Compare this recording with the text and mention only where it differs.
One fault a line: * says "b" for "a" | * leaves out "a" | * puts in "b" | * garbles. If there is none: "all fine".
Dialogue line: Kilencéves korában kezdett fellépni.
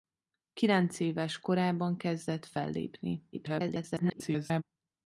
* garbles